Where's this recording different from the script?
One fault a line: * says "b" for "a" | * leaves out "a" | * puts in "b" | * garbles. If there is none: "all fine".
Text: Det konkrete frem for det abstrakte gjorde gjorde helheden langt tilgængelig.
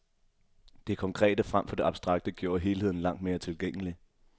* leaves out "gjorde"
* puts in "mere"